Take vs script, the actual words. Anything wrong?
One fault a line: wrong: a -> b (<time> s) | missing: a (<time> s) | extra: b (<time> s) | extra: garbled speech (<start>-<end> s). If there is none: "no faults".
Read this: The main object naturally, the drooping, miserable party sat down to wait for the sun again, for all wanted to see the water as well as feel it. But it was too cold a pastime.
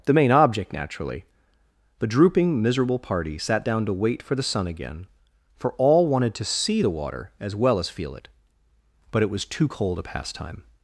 no faults